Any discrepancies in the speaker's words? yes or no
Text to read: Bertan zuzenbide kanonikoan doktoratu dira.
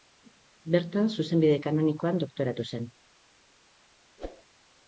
yes